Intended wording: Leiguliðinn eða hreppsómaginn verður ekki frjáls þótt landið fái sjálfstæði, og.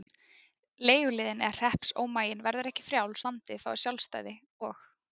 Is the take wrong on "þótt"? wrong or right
wrong